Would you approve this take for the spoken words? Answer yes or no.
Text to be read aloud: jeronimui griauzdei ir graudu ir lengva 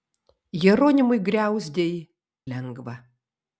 no